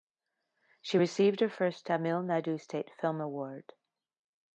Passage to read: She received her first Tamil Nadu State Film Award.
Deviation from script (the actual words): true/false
false